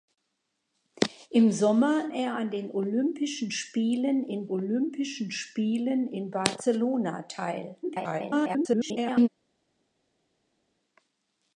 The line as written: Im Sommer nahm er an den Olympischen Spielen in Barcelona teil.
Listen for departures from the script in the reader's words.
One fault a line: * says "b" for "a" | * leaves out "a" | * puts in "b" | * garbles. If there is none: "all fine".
* leaves out "nahm"
* puts in "Olympischen Spielen in"
* garbles